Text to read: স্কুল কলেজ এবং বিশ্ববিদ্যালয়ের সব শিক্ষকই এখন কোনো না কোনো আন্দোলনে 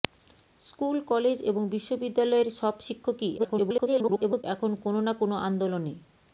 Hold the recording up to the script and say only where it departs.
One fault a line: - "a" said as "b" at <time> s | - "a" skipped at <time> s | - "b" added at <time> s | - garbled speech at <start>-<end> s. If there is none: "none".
- garbled speech at 3.4-4.4 s